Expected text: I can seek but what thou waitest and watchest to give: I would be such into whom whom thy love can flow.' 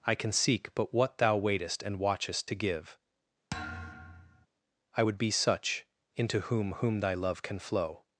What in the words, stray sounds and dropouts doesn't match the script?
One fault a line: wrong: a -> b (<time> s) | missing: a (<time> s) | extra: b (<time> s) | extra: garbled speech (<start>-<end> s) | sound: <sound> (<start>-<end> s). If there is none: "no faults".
sound: thud (3.5-4.5 s)